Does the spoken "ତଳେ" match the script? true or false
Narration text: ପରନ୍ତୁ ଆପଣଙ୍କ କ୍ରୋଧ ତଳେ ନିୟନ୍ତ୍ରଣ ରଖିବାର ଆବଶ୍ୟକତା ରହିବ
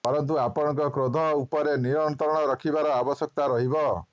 false